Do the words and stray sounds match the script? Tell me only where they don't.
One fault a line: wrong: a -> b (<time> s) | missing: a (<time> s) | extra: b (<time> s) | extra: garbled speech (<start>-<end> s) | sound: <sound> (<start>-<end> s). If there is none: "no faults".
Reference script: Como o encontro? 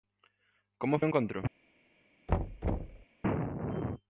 sound: thud (2.3-3.1 s)